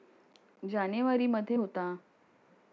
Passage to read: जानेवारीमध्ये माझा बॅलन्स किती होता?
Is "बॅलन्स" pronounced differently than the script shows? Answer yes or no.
yes